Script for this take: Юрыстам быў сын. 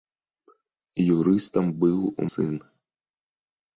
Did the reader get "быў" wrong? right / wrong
right